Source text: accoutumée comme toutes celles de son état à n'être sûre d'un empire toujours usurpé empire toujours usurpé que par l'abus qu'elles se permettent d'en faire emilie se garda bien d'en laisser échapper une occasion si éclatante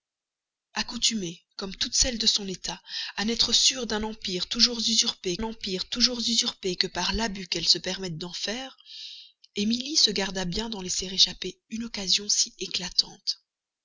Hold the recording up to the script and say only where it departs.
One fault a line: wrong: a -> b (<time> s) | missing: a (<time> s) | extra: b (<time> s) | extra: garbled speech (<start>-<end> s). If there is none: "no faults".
no faults